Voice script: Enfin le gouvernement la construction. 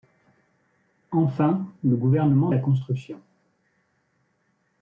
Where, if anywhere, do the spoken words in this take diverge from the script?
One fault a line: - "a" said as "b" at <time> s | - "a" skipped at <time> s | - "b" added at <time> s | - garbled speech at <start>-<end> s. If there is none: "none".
none